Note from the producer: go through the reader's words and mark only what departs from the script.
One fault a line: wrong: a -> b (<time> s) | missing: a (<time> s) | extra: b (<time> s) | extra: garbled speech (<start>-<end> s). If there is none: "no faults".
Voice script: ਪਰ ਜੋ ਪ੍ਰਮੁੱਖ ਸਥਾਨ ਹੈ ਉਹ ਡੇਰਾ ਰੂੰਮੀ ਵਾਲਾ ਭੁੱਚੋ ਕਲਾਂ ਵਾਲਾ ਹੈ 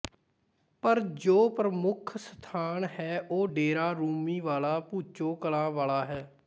no faults